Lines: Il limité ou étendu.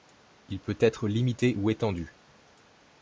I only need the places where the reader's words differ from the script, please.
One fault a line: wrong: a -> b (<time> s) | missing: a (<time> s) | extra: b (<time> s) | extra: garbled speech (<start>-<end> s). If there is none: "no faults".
extra: peut être (0.6 s)